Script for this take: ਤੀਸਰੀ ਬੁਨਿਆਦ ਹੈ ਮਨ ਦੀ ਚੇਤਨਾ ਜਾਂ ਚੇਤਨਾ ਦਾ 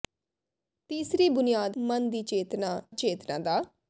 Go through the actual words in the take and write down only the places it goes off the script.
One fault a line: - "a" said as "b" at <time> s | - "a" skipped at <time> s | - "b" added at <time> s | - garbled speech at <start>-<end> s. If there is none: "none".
- "ਹੈ" skipped at 1.8 s
- "ਜਾਂ" skipped at 2.8 s